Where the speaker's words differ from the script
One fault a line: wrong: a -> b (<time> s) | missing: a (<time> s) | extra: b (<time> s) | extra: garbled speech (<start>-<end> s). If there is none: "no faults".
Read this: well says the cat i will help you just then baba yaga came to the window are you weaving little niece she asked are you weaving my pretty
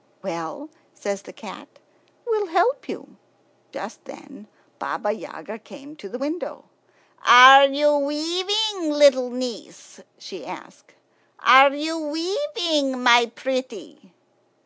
missing: i (1.7 s)